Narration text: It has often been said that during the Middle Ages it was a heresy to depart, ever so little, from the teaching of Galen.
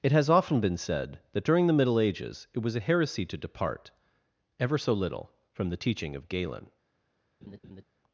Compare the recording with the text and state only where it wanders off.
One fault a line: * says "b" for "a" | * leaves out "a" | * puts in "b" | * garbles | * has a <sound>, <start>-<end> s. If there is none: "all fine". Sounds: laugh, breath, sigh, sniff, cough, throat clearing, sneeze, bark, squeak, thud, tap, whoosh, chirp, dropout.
* has a laugh, 7.4-7.8 s